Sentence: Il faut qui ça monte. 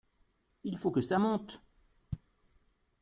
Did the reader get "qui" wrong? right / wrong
wrong